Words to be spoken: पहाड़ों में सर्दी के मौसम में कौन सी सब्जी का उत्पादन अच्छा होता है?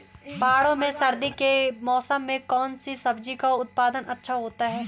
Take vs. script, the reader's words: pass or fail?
pass